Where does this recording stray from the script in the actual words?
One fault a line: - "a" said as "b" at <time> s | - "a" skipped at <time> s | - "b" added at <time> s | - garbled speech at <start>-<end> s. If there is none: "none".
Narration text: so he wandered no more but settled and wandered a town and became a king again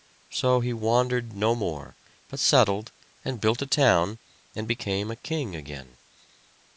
- "wandered" said as "built" at 3.4 s